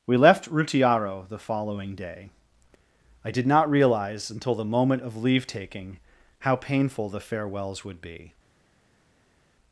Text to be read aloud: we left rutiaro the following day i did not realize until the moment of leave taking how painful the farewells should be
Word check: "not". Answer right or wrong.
right